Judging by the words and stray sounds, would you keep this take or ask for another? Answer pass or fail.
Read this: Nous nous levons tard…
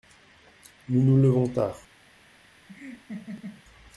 fail